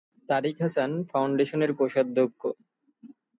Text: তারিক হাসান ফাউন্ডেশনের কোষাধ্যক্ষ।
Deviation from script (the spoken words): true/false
false